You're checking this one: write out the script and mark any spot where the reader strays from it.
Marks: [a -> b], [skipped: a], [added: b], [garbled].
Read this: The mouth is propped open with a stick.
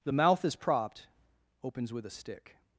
The mouth is propped [open -> opens] with a stick.